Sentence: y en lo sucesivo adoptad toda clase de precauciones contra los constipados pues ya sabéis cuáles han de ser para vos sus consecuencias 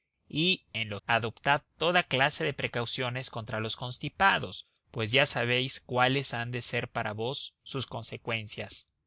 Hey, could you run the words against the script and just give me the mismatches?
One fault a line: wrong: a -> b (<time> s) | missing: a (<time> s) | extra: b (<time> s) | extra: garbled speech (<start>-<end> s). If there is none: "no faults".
missing: sucesivo (1.0 s)